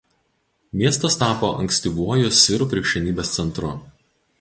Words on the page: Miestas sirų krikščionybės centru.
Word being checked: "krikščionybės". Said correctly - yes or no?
yes